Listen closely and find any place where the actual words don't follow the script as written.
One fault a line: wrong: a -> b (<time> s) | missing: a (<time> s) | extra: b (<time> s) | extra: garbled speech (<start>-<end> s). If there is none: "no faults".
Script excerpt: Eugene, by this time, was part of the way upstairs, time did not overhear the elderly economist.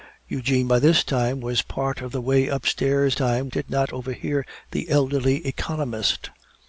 no faults